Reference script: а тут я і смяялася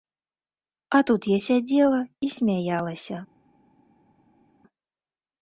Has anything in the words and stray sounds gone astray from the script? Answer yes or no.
yes